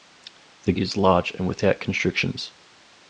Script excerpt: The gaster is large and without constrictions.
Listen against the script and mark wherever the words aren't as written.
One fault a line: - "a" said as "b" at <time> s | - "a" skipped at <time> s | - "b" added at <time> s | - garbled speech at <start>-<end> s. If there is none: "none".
- "gaster" skipped at 0.7 s